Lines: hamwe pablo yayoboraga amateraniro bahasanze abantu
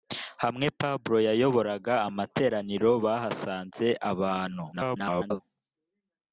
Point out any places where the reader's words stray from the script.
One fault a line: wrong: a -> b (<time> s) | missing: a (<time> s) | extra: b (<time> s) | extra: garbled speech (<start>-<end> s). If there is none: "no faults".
extra: garbled speech (4.7-5.4 s)